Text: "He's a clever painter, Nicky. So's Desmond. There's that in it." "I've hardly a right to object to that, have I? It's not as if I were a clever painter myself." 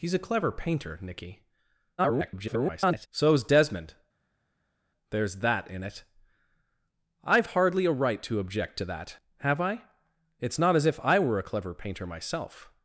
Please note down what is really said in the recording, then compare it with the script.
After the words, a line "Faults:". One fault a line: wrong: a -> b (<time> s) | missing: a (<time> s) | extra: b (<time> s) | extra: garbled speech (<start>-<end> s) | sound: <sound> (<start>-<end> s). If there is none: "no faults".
"He's a clever painter, Nicky. [garbled] So's Desmond. There's that in it." "I've hardly a right to object to that, have I? It's not as if I were a clever painter myself."
Faults:
extra: garbled speech (2.0-3.1 s)